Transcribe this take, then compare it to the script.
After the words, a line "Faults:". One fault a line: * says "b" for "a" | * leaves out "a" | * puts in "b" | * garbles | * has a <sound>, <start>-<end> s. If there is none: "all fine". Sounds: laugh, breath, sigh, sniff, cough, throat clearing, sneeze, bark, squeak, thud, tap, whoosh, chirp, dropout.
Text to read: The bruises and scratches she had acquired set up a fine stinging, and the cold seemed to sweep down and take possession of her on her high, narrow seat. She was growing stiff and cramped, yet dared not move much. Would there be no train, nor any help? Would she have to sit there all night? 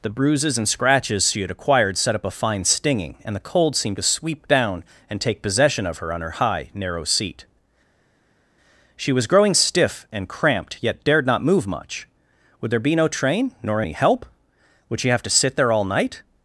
The bruises and scratches she had acquired set up a fine stinging, and the cold seemed to sweep down and take possession of her on her high, narrow seat. She was growing stiff and cramped, yet dared not move much. Would there be no train, nor any help? Would she have to sit there all night?
Faults:
all fine